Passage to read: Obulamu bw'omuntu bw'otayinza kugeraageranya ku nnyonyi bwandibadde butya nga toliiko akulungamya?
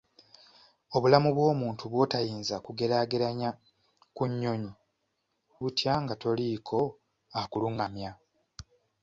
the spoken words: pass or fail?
fail